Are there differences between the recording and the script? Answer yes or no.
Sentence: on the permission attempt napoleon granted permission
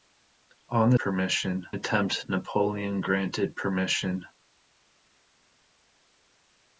no